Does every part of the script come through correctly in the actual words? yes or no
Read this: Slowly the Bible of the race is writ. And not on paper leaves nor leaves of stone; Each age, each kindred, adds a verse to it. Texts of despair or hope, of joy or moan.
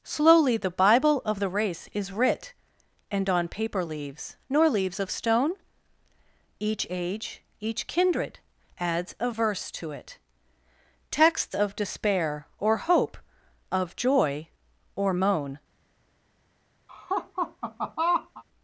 no